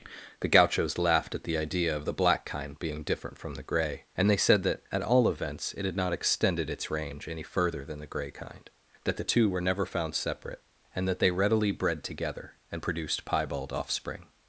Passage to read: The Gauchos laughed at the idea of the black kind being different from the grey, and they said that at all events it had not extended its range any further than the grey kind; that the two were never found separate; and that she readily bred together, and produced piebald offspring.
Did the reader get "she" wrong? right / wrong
wrong